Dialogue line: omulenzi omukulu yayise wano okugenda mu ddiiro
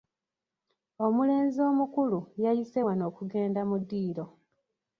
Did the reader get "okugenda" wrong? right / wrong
right